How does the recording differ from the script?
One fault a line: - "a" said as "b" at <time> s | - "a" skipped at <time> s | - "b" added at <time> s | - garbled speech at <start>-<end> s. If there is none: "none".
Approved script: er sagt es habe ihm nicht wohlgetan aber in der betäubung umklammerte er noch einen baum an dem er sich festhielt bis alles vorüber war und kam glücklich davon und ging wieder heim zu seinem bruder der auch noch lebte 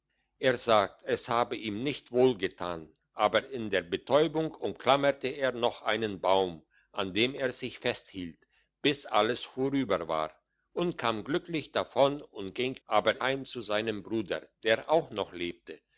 - "wieder" said as "aber" at 12.9 s